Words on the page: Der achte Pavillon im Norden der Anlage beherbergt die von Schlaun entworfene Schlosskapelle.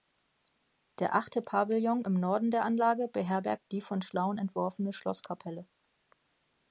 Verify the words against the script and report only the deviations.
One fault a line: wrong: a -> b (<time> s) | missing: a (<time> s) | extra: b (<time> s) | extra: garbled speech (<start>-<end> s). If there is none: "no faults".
no faults